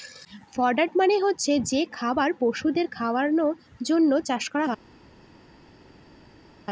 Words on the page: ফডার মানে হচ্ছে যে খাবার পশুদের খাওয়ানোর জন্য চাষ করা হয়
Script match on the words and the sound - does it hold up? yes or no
yes